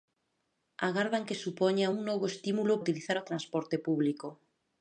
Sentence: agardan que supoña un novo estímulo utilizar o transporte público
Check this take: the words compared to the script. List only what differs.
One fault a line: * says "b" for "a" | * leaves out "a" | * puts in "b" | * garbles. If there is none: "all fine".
all fine